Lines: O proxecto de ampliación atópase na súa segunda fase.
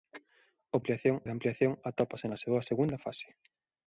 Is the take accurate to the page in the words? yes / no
no